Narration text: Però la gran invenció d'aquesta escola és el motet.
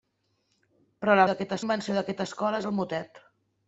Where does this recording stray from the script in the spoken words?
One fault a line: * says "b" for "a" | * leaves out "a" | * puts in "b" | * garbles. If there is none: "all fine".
* says "d'aquesta" for "gran"